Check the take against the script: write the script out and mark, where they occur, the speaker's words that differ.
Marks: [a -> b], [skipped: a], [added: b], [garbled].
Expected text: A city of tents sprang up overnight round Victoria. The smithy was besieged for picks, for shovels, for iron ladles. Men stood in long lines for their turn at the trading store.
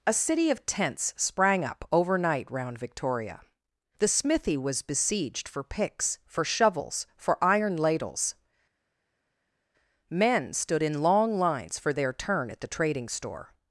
A city of tents sprang up overnight round Victoria. The smithy was besieged for picks, for shovels, for iron ladles. Men stood in long lines for their turn at the trading store.